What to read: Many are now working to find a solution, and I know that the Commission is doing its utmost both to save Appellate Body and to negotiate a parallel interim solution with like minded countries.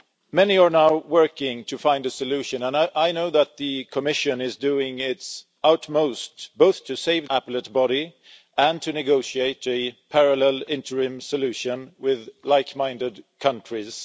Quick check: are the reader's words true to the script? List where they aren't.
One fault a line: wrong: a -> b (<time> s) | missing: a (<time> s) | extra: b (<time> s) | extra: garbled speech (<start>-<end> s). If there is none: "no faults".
no faults